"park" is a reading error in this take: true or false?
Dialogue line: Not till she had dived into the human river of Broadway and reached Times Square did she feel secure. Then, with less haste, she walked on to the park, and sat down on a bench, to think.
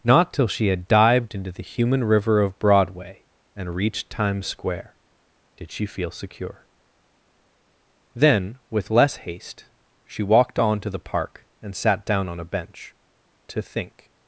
false